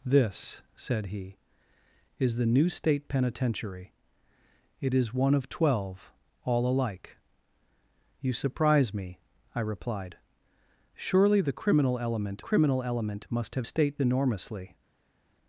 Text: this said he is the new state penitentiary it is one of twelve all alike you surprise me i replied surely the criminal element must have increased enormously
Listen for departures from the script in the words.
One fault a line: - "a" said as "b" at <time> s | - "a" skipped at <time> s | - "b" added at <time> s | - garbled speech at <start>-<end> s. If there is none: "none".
- "criminal element" added at 12.4 s
- "increased" said as "state" at 13.6 s